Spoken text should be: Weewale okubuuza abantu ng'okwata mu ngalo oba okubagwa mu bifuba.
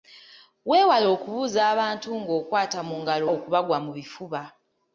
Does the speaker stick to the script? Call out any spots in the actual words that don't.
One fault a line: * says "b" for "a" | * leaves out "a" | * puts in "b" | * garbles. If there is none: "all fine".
* leaves out "oba"